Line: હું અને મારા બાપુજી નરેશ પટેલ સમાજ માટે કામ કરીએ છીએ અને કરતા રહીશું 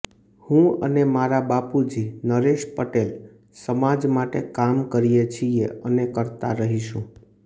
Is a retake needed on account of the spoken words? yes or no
no